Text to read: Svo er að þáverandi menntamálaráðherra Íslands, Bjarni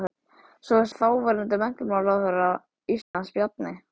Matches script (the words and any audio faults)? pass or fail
fail